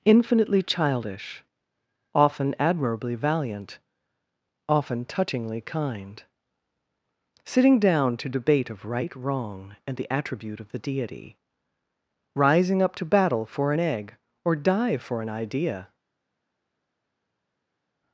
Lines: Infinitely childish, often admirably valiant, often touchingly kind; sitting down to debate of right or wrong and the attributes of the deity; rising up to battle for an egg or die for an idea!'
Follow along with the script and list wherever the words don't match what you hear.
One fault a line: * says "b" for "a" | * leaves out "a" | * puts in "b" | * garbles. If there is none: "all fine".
* leaves out "or"
* says "attribute" for "attributes"